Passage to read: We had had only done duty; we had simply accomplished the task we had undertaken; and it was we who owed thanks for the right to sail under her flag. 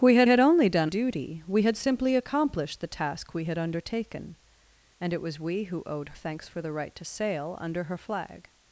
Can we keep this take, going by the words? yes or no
yes